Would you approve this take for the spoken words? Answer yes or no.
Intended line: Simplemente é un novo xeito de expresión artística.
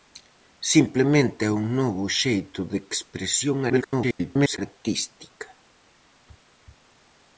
no